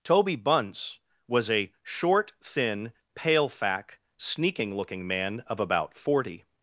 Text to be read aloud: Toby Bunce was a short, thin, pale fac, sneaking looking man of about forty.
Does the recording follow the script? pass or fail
pass